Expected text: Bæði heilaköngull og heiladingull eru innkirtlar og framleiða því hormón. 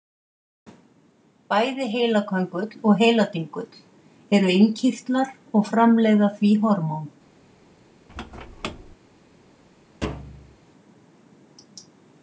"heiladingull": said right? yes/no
yes